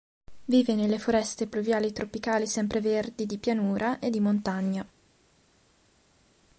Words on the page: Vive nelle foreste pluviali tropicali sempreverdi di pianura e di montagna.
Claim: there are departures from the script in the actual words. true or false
false